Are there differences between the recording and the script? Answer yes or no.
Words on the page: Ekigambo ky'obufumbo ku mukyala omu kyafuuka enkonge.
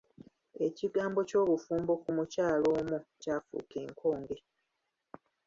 no